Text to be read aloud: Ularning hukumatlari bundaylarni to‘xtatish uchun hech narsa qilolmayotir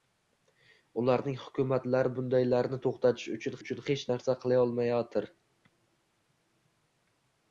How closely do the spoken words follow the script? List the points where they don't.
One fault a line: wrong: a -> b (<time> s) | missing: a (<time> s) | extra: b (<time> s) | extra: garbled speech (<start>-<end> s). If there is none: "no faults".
extra: uchun (3.6 s)